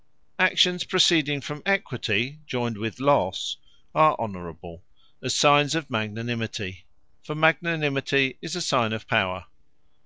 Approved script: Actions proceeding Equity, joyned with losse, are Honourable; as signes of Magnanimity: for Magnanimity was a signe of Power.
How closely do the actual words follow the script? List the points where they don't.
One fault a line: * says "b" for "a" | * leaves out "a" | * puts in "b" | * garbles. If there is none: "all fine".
* puts in "from"
* says "is" for "was"